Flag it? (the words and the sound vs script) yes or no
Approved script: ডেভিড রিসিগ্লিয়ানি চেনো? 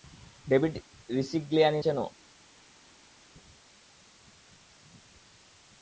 no